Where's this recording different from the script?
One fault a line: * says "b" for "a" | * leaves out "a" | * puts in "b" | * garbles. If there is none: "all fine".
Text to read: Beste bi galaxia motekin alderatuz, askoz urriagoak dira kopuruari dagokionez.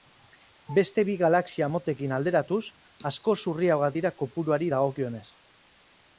all fine